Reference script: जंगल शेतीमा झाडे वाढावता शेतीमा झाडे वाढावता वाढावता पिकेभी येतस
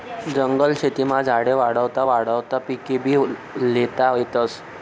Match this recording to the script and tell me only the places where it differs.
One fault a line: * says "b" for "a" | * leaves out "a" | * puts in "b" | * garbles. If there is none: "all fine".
* leaves out "शेतीमा झाडे"
* says "पिकेभी ल्हेता" for "वाढावता पिकेभी"